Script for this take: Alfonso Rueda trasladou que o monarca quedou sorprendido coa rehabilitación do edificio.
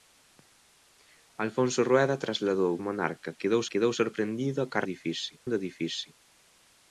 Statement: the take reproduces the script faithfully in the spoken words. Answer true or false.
false